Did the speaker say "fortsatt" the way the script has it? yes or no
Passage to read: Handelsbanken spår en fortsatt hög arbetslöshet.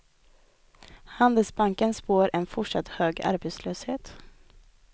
yes